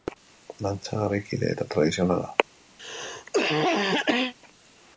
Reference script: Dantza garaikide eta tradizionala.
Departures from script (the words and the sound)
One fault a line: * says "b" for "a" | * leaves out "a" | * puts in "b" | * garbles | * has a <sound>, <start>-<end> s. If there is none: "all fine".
* has a cough, 2.8-4.3 s